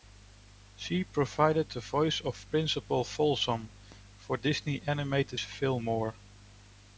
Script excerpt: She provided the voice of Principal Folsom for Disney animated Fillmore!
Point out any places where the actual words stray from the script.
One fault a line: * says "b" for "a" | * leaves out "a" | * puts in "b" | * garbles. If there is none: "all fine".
all fine